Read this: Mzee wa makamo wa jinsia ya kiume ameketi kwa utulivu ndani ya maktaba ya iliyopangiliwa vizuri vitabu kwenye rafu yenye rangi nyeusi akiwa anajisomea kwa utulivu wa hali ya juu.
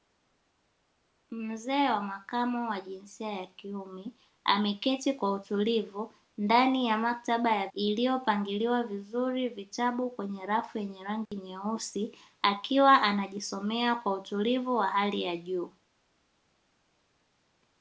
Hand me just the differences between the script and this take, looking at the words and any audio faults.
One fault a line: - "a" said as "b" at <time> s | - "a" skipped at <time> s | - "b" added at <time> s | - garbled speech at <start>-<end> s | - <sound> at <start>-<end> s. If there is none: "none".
- dropout at 11.3-11.3 s